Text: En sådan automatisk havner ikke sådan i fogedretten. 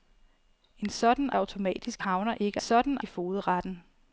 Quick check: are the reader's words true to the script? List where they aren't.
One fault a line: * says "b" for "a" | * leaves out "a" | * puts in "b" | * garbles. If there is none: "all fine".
all fine